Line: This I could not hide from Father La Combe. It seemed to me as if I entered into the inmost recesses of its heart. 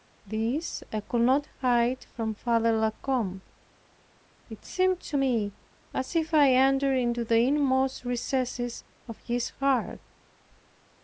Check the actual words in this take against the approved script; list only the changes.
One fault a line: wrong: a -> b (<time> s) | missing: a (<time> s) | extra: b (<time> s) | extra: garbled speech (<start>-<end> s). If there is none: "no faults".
wrong: its -> his (9.2 s)